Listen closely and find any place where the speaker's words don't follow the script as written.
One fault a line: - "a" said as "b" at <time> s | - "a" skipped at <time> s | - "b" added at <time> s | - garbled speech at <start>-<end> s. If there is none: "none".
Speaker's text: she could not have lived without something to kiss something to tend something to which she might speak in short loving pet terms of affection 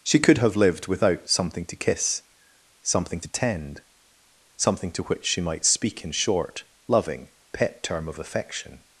- "not" skipped at 0.4 s
- "terms" said as "term" at 7.8 s